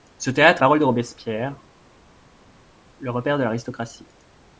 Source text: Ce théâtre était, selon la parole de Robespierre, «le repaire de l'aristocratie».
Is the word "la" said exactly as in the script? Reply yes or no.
no